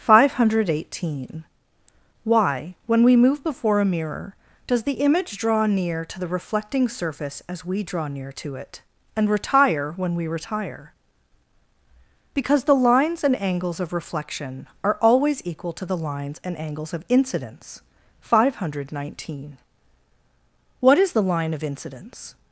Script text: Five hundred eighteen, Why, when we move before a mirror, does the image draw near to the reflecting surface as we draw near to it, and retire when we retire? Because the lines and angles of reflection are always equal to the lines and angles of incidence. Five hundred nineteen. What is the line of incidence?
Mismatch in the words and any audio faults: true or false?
false